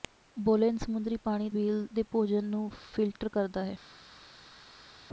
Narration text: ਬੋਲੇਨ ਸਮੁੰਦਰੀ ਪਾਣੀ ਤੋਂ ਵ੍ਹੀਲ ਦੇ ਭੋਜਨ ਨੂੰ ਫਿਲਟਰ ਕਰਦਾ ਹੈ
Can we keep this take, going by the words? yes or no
no